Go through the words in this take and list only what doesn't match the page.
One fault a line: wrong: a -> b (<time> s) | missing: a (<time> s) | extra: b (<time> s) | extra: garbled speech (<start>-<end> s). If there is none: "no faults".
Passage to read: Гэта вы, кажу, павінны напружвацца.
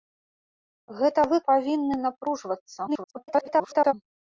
missing: кажу (1.4 s)
extra: garbled speech (2.9-3.9 s)